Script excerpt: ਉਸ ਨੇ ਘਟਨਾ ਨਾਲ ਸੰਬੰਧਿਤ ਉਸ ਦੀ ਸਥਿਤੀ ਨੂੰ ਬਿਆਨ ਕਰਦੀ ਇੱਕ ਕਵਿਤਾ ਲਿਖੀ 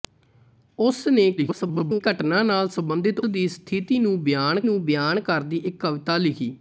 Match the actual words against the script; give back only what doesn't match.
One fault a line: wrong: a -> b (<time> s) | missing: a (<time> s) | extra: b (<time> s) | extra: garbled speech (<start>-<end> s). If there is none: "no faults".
extra: garbled speech (1.4-2.0 s)
missing: ਉਸ (3.2 s)
extra: ਨੂੰ ਬਿਆਨ (4.6 s)